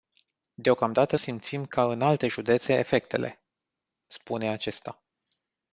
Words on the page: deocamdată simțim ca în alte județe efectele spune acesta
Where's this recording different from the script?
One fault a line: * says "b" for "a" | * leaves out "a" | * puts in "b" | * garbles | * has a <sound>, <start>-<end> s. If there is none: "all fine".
all fine